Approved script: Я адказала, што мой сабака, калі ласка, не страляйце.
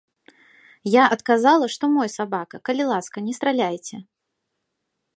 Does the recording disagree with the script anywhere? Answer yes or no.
no